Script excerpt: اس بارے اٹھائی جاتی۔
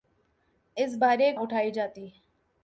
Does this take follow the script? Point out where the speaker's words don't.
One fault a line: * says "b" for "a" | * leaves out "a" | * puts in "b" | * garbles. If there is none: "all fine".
all fine